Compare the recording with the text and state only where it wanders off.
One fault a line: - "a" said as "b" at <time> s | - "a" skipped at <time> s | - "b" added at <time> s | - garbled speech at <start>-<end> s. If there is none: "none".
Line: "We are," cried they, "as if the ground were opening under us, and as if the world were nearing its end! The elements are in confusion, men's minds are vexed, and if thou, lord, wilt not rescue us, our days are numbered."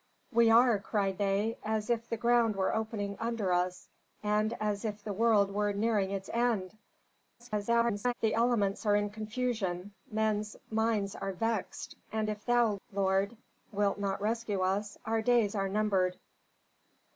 - garbled speech at 7.4-8.1 s